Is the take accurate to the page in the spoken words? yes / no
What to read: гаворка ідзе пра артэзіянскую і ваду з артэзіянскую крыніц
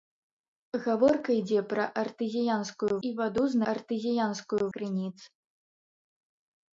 yes